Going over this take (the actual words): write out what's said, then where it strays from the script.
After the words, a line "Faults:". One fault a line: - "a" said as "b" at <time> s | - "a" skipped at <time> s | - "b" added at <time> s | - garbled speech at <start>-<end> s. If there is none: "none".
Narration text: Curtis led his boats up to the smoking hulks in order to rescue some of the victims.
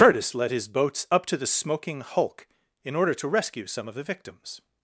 Curtis led his boats up to the smoking hulk in order to rescue some of the victims.
Faults:
- "hulks" said as "hulk" at 2.0 s